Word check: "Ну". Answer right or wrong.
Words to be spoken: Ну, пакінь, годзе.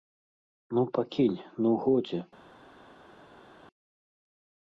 right